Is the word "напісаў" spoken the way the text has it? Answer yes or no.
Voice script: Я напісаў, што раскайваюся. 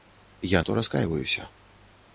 no